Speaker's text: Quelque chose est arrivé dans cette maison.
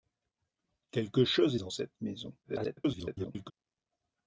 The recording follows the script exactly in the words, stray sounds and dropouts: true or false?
false